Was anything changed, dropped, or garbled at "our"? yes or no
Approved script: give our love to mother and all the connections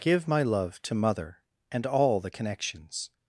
yes